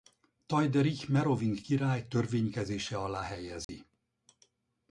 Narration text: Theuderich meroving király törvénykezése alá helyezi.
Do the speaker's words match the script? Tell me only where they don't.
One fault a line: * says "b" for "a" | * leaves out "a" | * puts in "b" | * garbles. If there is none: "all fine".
all fine